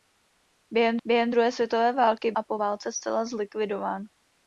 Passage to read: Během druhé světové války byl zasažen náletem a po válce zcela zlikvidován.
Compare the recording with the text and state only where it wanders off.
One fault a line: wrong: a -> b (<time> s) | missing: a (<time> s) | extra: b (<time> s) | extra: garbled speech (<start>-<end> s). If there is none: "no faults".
extra: během (1.1 s)
missing: byl zasažen náletem (2.3 s)